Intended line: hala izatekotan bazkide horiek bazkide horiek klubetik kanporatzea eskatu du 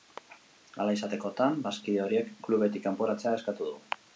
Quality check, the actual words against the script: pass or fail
fail